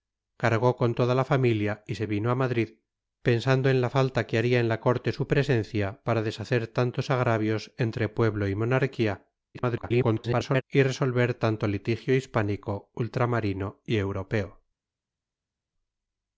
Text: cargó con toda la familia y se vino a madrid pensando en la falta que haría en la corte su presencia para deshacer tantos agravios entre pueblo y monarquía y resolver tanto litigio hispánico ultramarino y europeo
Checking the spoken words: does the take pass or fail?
fail